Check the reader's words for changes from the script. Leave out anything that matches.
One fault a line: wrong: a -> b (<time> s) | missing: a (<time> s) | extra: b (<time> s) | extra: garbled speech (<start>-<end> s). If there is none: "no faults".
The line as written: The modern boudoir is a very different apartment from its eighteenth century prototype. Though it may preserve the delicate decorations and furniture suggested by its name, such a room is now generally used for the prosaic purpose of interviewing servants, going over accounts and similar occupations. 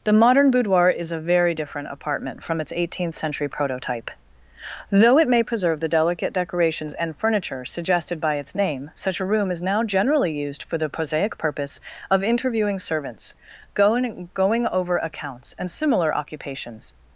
extra: going (14.3 s)